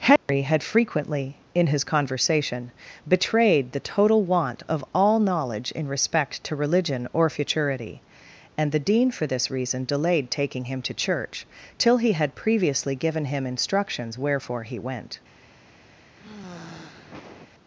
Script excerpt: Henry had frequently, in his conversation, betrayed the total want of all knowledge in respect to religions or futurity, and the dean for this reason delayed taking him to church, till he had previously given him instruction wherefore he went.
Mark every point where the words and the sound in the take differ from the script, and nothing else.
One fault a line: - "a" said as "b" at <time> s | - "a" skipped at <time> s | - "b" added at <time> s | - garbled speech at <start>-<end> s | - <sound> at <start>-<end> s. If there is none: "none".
- dropout at 0.2-0.3 s
- "religions" said as "religion" at 6.5 s
- "instruction" said as "instructions" at 13.4 s
- sigh at 16.2-17.5 s